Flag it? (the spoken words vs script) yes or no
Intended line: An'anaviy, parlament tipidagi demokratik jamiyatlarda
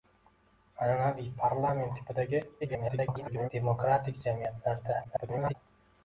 yes